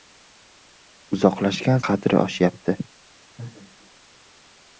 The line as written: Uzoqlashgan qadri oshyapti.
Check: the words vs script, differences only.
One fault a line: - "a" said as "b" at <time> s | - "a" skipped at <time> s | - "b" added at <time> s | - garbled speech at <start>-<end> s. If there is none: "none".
none